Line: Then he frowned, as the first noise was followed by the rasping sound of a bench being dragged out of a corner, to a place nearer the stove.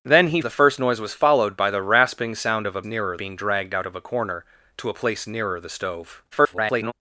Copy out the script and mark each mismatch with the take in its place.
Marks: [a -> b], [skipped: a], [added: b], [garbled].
Then he [skipped: frowned, as] the first noise was followed by the rasping sound of a [bench -> nearer] being dragged out of a corner, to a place nearer the stove. [garbled]